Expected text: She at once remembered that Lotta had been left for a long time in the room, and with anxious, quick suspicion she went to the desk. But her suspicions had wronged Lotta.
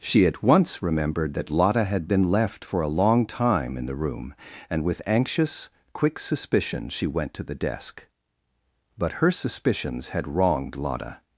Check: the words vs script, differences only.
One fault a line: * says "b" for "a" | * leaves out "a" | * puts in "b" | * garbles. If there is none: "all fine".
all fine